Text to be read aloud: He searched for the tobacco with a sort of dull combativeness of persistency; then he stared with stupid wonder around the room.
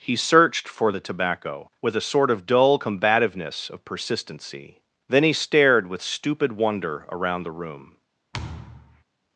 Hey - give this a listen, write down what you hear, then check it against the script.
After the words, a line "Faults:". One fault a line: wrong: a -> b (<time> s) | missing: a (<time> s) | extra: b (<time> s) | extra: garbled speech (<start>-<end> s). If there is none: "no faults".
He searched for the tobacco with a sort of dull combativeness of persistency; then he stared with stupid wonder around the room.
Faults:
no faults